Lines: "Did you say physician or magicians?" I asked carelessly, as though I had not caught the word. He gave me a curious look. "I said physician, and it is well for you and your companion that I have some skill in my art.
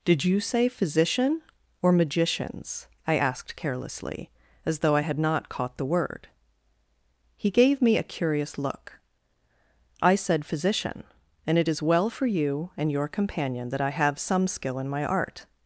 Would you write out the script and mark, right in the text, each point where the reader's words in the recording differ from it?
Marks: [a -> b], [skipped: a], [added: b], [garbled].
"Did you say physician or magicians?" I asked carelessly, as though I had not caught the word. He gave me a curious look. "I said physician, and it is well for you and your companion that I have some skill in my art.